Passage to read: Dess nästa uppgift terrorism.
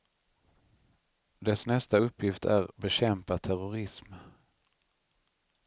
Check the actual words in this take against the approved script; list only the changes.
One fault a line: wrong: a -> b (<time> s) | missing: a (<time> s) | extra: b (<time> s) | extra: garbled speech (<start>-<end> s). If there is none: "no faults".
extra: är bekämpa (2.4 s)